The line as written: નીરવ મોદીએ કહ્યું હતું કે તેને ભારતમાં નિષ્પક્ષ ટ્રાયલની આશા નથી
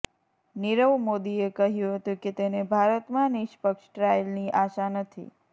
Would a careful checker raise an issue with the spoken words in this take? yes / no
no